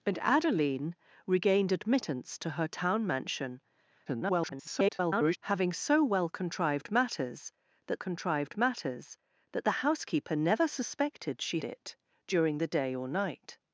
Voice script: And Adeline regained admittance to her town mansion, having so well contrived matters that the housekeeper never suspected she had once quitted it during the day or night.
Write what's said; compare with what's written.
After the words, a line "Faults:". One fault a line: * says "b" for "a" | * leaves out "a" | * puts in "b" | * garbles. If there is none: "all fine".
And Adeline regained admittance to her town mansion, [garbled] having so well contrived matters that contrived matters that the housekeeper never suspected she it during the day or night.
Faults:
* garbles
* puts in "contrived matters that"
* leaves out "had once quitted"